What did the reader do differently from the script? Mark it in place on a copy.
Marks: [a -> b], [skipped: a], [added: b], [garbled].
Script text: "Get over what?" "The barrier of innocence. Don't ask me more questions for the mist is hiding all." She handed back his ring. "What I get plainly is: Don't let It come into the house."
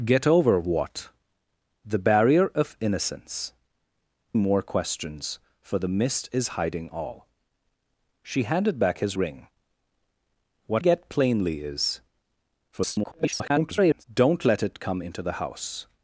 "Get over what?" "The barrier of innocence. [skipped: Don't ask me] more questions for the mist is hiding all." She handed back his ring. "What [skipped: I] get plainly is: [garbled] Don't let It come into the house."